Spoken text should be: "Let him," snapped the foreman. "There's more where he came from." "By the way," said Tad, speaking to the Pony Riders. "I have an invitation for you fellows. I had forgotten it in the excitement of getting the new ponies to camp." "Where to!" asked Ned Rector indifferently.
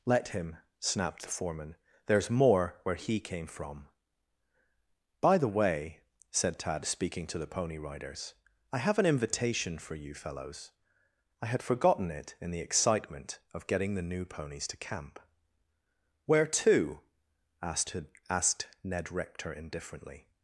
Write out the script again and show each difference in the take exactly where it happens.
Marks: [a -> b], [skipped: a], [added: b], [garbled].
"Let him," snapped the foreman. "There's more where he came from." "By the way," said Tad, speaking to the Pony Riders. "I have an invitation for you fellows. I had forgotten it in the excitement of getting the new ponies to camp." "Where to!" asked [added: asked] Ned Rector indifferently.